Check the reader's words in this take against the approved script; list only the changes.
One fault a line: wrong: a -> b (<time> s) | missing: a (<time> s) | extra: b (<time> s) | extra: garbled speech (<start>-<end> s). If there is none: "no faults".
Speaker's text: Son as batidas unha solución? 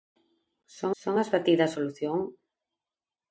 extra: son (1.0 s)
missing: unha (1.8 s)